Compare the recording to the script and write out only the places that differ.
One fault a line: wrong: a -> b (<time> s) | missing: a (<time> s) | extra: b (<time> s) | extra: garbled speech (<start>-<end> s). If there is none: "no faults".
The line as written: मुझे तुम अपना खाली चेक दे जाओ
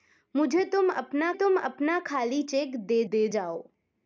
extra: तुम अपना (1.3 s)
extra: दे (3.1 s)